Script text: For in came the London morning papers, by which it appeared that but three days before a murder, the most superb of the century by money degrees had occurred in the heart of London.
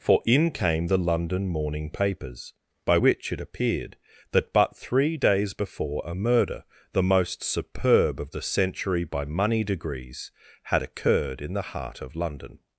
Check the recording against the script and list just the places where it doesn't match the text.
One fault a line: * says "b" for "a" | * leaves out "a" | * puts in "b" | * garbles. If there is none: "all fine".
all fine